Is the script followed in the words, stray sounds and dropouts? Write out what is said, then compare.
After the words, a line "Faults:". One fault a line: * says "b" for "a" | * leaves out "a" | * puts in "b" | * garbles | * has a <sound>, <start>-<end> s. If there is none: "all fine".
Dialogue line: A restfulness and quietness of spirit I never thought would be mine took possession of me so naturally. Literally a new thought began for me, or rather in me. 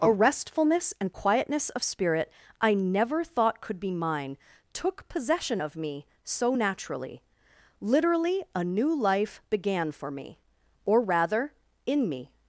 A restfulness and quietness of spirit I never thought could be mine took possession of me so naturally. Literally a new life began for me, or rather in me.
Faults:
* says "could" for "would"
* says "life" for "thought"